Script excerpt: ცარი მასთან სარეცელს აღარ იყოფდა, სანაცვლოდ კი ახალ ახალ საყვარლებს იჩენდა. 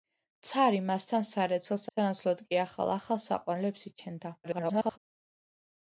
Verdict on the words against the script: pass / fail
fail